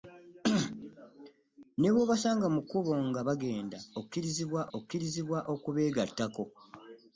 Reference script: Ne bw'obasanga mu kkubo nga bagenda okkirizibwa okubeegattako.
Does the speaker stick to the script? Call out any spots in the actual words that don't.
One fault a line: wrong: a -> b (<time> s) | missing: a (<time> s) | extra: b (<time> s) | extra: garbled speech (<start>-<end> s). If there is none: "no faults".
extra: okkirizibwa (4.8 s)